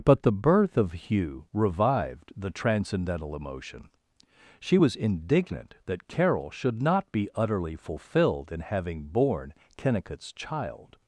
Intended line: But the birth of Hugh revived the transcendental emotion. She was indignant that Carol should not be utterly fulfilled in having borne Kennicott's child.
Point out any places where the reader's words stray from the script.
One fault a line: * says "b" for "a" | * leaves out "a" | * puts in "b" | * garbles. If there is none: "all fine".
all fine